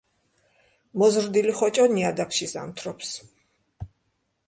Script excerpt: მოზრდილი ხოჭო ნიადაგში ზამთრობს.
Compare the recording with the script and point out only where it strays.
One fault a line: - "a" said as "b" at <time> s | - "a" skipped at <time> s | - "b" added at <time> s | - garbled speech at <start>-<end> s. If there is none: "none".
none